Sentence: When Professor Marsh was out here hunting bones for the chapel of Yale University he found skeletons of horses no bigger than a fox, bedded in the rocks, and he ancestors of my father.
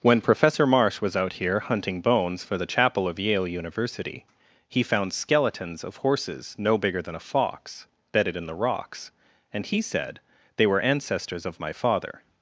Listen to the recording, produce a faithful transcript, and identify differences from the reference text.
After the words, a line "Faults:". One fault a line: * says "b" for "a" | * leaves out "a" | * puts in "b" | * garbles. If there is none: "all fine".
When Professor Marsh was out here hunting bones for the chapel of Yale University he found skeletons of horses no bigger than a fox, bedded in the rocks, and he said they were ancestors of my father.
Faults:
* puts in "said they were"